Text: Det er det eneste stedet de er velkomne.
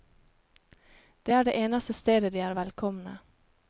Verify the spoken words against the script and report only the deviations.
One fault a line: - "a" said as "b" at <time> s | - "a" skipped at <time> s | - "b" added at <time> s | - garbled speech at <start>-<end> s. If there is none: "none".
none